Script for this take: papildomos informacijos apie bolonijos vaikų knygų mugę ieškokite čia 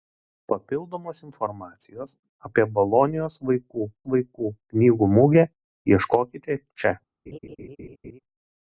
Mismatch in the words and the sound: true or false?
true